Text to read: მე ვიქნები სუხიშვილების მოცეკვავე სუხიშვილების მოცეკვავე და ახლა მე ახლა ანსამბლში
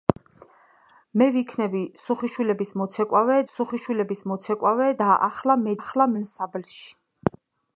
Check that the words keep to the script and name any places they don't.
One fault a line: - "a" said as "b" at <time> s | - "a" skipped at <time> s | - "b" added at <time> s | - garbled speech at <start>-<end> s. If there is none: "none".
none